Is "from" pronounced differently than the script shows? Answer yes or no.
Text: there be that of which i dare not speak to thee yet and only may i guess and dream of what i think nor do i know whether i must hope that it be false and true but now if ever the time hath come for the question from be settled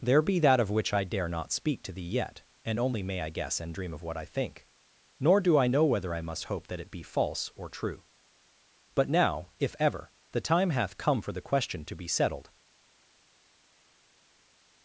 yes